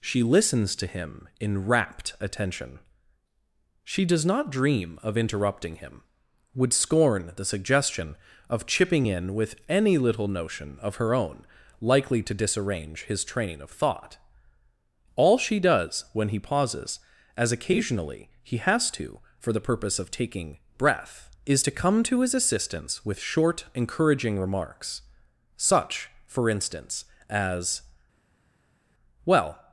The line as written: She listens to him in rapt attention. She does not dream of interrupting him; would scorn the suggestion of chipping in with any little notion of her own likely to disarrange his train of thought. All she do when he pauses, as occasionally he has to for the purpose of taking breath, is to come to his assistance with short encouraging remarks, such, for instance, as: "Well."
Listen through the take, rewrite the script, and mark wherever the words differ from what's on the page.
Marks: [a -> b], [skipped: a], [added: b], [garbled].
She listens to him in rapt attention. She does not dream of interrupting him; would scorn the suggestion of chipping in with any little notion of her own likely to disarrange his train of thought. All she [do -> does] when he pauses, as occasionally he has to for the purpose of taking breath, is to come to his assistance with short encouraging remarks, such, for instance, as: "Well."